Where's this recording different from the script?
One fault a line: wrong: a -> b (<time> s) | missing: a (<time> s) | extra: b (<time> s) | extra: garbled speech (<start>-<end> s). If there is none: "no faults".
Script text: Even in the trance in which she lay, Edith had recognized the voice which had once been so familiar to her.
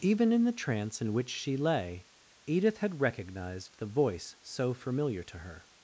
missing: which had once been (4.4 s)